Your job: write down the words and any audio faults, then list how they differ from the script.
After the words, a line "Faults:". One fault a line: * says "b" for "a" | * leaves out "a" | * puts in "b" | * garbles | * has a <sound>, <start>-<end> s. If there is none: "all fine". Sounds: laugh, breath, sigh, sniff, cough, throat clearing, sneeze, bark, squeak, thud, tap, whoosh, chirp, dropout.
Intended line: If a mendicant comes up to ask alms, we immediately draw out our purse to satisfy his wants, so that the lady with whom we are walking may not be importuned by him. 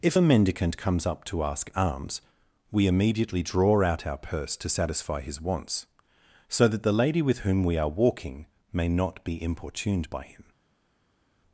If a mendicant comes up to ask alms, we immediately draw out our purse to satisfy his wants, so that the lady with whom we are walking may not be importuned by him.
Faults:
all fine